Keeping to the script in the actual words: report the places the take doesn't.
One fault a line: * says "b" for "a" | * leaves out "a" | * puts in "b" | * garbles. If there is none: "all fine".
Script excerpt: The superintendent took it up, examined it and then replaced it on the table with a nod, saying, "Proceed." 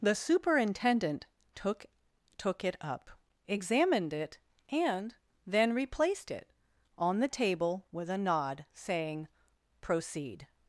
* puts in "took"